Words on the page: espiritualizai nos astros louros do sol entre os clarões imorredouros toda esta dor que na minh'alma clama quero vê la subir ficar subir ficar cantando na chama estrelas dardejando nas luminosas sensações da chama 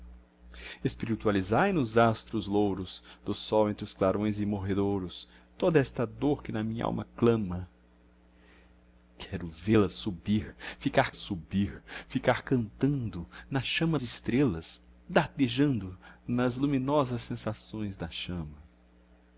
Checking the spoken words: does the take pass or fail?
pass